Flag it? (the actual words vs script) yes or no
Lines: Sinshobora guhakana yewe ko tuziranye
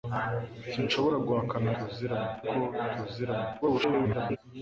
yes